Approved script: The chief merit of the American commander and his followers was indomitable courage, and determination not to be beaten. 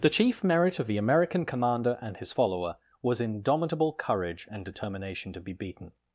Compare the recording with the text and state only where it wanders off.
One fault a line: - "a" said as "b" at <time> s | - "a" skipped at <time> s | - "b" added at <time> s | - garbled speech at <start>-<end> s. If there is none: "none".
- "followers" said as "follower" at 2.3 s
- "not" skipped at 5.3 s